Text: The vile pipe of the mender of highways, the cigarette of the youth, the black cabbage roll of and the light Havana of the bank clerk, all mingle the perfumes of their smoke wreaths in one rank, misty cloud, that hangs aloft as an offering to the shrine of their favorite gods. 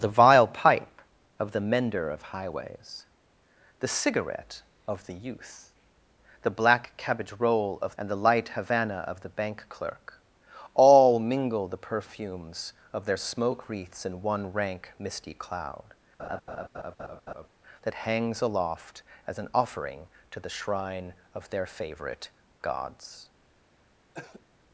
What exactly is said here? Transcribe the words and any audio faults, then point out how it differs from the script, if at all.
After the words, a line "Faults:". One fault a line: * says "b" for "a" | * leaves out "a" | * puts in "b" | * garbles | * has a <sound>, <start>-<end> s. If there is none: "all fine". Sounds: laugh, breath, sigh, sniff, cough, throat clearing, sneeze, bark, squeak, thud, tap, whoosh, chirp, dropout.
The vile pipe of the mender of highways, the cigarette of the youth, the black cabbage roll of and the light Havana of the bank clerk, all mingle the perfumes of their smoke wreaths in one rank, misty cloud, that hangs aloft as an offering to the shrine of their favorite gods.
Faults:
* has a laugh, 16.2-17.5 s
* has a cough, 24.1-24.5 s